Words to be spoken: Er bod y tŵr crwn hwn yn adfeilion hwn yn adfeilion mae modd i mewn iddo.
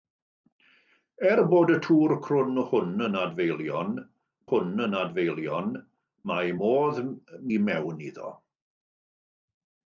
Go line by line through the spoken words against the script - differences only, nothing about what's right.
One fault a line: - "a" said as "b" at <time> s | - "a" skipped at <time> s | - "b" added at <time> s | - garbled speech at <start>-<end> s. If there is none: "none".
none